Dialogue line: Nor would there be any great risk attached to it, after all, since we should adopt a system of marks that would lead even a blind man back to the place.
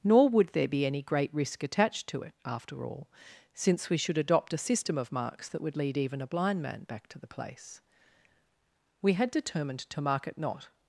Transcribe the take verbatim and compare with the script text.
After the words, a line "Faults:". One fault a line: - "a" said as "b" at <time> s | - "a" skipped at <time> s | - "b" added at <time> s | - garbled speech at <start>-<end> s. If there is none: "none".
Nor would there be any great risk attached to it, after all, since we should adopt a system of marks that would lead even a blind man back to the place. We had determined to mark it not
Faults:
- "We had determined to mark it not" added at 9.0 s